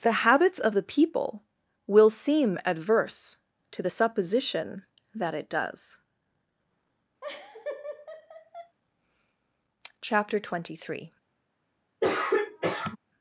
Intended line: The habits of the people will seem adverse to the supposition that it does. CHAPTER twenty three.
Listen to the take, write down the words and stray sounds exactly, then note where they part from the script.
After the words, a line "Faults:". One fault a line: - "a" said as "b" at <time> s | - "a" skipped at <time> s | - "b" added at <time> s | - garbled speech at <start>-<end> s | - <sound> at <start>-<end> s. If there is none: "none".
The habits of the people will seem adverse to the supposition that it does. CHAPTER twenty three.
Faults:
- laugh at 7.2-8.8 s
- throat clearing at 12.0-13.0 s